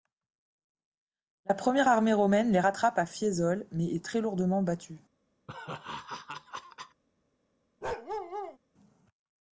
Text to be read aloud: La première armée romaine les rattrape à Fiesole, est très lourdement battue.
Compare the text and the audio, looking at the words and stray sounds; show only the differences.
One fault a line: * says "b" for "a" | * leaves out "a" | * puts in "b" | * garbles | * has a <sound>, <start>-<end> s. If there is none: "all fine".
* puts in "mais"
* has a laugh, 5.5-7.0 s
* has a bark, 7.8-8.6 s